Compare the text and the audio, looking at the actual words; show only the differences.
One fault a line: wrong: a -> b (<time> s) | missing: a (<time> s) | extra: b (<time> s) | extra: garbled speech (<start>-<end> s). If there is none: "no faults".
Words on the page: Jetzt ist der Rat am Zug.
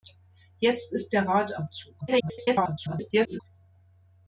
extra: garbled speech (2.0-3.4 s)